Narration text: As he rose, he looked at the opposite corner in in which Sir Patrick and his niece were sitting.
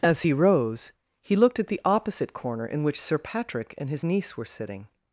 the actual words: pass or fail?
fail